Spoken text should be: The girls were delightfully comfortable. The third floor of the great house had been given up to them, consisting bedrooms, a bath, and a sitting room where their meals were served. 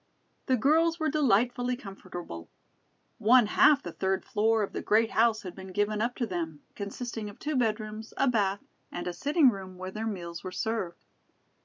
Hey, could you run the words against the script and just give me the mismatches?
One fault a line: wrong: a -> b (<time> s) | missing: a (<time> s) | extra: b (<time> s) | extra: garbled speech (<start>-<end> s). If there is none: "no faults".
extra: One half (3.2 s)
extra: of two (7.3 s)